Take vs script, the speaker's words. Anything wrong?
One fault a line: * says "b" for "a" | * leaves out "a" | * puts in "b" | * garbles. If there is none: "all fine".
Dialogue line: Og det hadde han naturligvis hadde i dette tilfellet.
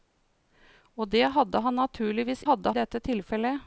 all fine